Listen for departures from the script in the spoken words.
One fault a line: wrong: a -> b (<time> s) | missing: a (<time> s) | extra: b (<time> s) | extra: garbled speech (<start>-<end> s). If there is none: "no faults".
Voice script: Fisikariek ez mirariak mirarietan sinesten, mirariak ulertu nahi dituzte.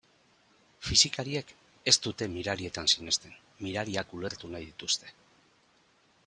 wrong: mirariak -> dute (2.1 s)